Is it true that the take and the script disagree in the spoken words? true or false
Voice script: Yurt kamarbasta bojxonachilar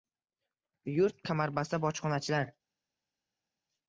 false